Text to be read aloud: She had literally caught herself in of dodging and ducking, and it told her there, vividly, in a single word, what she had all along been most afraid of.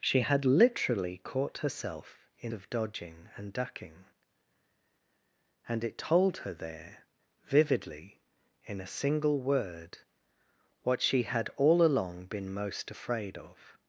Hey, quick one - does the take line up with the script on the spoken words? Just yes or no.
yes